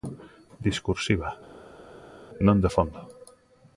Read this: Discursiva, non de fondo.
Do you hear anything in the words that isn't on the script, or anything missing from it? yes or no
no